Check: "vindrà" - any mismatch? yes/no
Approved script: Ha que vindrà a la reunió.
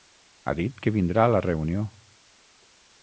no